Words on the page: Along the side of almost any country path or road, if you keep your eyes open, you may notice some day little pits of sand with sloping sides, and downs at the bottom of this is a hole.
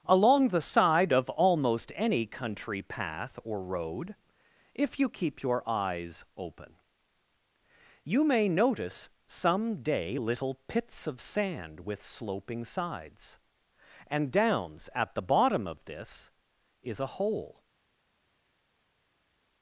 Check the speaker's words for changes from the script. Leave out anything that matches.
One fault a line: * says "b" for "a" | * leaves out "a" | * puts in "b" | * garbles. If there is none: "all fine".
all fine